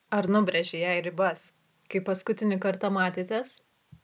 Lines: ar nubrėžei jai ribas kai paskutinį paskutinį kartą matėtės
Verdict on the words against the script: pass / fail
fail